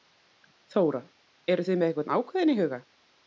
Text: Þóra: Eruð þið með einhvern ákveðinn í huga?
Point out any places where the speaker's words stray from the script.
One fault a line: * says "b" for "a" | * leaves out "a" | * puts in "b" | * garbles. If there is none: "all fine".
all fine